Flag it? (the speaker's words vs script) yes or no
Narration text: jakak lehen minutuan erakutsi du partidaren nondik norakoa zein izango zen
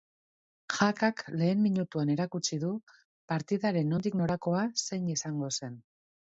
no